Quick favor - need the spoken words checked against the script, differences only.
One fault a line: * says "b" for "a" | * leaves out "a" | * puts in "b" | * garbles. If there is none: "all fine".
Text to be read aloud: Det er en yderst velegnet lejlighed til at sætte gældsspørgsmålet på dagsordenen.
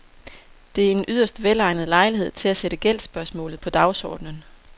all fine